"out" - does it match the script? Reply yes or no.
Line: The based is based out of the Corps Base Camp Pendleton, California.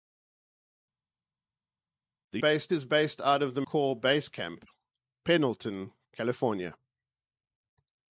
yes